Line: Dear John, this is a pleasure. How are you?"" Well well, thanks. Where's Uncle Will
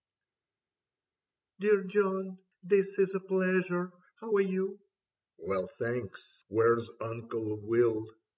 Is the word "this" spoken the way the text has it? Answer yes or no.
yes